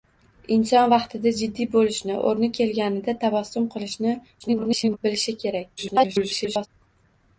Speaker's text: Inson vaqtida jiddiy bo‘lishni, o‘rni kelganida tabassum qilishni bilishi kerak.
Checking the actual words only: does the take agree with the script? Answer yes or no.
no